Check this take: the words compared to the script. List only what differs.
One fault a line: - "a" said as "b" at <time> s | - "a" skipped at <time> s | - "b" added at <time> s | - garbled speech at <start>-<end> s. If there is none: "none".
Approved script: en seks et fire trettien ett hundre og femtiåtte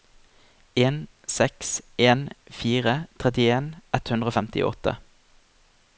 - "et" said as "en" at 2.1 s